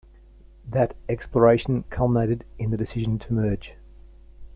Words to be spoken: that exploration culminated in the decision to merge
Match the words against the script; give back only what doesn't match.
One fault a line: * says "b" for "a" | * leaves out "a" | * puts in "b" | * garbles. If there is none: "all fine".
all fine